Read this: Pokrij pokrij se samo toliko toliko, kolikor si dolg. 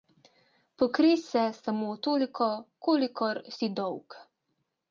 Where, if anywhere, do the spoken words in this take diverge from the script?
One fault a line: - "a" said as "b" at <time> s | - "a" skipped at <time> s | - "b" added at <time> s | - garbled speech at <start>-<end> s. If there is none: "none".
- "pokrij" skipped at 1.2 s
- "toliko" skipped at 2.5 s